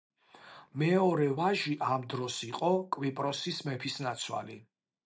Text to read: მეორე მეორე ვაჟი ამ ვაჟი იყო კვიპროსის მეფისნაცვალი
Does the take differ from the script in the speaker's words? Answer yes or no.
yes